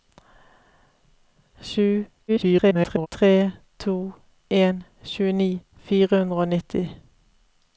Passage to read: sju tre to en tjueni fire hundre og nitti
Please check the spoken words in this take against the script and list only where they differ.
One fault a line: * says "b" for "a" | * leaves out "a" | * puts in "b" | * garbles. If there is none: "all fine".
* garbles